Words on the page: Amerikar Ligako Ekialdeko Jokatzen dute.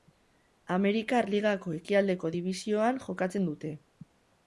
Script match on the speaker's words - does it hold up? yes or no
no